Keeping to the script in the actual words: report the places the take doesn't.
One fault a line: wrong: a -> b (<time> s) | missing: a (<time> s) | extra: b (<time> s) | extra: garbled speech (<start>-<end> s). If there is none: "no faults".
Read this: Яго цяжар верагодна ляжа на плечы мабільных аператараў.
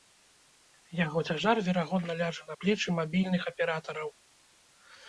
no faults